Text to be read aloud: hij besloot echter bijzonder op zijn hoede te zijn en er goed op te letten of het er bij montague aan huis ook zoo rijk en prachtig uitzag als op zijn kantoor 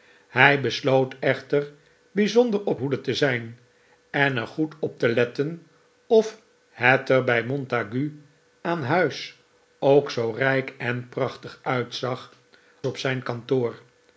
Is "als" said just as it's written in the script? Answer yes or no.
no